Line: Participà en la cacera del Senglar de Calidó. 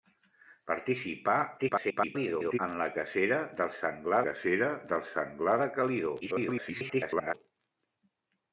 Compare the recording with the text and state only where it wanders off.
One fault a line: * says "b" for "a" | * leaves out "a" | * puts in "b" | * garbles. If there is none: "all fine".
* garbles
* puts in "cacera del Senglar"
* garbles